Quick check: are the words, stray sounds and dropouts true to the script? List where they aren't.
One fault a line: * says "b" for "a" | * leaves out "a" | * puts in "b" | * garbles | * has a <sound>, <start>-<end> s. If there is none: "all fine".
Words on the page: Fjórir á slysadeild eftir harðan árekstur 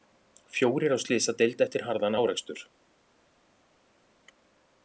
all fine